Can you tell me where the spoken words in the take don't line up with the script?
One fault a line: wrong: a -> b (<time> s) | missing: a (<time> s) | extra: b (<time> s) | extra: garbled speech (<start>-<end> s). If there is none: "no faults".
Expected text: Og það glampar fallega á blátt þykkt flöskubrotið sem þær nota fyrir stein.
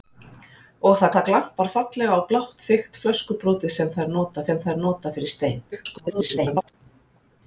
extra: það (1.1 s)
extra: sem þær nota (4.5 s)
extra: garbled speech (5.7-6.7 s)